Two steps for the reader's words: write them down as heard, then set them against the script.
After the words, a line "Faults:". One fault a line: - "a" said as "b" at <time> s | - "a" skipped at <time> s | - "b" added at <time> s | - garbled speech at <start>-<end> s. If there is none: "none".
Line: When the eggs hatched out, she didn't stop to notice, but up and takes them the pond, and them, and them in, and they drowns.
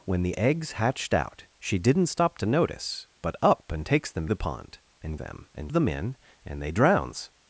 When the eggs hatched out, she didn't stop to notice, but up and takes them the pond, and them, and them in, and they drowns.
Faults:
none